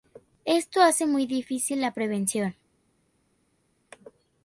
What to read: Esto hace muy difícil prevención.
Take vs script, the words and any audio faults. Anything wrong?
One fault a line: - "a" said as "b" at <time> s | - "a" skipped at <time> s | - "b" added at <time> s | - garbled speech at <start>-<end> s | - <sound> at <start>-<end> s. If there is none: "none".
- "la" added at 1.8 s